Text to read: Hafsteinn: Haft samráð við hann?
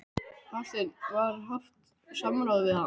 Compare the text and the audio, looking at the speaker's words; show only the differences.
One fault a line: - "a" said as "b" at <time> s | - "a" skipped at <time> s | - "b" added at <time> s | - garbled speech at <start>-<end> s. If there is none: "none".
- "Var" added at 1.2 s